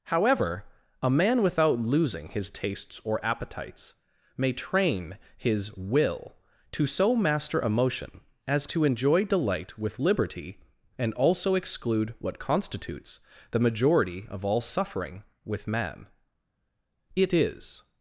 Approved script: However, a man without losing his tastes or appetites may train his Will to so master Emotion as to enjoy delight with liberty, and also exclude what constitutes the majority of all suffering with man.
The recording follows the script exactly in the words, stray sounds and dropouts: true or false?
false